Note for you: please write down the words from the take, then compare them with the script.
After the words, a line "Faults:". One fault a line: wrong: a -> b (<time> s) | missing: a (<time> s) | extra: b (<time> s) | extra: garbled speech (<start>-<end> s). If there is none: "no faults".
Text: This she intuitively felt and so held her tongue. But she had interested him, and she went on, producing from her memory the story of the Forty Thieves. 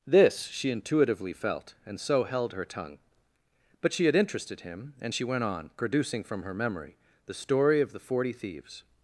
This she intuitively felt and so held her tongue. But she had interested him, and she went on, producing from her memory the story of the Forty Thieves.
Faults:
no faults